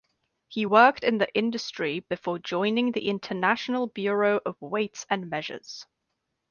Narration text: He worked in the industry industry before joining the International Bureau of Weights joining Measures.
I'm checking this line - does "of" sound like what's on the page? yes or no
yes